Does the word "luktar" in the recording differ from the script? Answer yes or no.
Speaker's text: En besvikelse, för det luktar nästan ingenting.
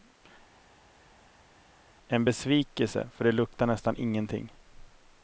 no